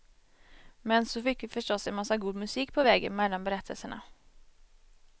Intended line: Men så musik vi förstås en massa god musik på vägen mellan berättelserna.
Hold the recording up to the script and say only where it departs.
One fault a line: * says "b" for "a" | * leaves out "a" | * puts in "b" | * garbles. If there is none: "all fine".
* says "fick" for "musik"